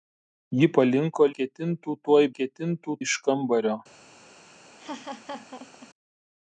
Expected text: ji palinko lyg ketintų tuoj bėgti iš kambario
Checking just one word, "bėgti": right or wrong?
wrong